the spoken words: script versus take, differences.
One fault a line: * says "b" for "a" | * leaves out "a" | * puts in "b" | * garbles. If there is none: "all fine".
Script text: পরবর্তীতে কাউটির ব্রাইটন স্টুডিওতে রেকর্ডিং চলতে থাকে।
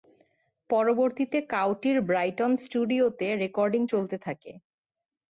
all fine